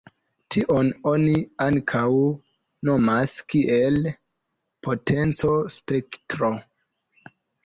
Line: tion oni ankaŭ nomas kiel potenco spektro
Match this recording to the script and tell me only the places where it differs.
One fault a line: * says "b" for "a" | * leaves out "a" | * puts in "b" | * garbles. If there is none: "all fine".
all fine